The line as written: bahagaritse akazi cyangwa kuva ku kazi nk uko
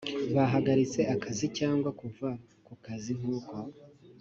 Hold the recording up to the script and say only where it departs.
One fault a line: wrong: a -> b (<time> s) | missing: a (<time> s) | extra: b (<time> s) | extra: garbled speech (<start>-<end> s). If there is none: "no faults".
no faults